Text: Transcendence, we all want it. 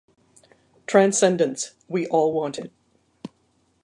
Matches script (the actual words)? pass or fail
pass